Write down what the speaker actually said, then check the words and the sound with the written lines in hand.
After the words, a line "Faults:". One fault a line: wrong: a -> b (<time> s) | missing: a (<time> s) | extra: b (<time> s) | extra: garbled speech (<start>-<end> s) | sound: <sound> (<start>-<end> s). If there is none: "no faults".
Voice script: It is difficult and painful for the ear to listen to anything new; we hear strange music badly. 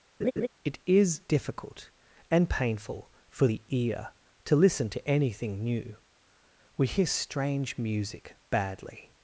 It is difficult and painful for the ear to listen to anything new; we hear strange music badly.
Faults:
sound: laugh (0.2-0.5 s)